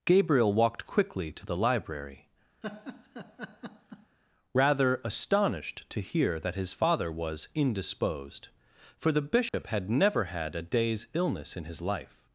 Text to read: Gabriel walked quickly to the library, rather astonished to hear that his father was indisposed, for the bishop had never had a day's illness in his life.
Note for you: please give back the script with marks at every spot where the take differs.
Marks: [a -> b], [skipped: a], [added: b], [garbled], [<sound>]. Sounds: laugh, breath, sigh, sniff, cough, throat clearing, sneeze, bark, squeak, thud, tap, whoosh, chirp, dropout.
Gabriel walked quickly to the library, [laugh] rather astonished to hear that his father was indisposed, for the bishop [dropout] had never had a day's illness in his life.